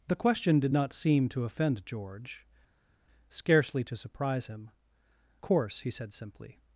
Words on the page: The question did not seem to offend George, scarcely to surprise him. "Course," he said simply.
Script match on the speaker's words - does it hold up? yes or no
yes